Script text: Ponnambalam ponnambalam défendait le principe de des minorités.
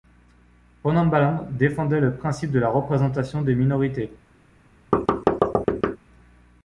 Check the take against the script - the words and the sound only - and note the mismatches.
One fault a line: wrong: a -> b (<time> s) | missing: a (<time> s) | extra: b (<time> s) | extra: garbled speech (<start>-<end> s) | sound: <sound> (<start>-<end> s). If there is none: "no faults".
missing: ponnambalam (1.4 s)
extra: la représentation (2.6 s)
sound: thud (4.9-6.0 s)